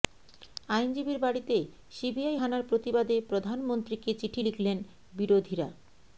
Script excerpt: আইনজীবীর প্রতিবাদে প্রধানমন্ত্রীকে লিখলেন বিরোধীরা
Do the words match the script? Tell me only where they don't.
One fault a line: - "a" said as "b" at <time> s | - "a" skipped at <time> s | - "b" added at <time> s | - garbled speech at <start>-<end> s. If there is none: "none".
- "বাড়িতে সিবিআই হানার" added at 1.2 s
- "চিঠি" added at 4.1 s